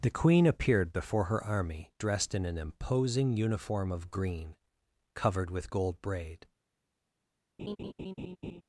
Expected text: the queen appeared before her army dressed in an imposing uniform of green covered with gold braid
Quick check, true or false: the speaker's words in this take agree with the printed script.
true